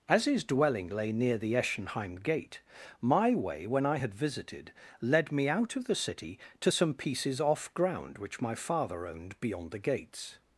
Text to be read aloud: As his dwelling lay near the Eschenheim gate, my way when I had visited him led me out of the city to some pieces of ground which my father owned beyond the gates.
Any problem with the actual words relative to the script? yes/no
yes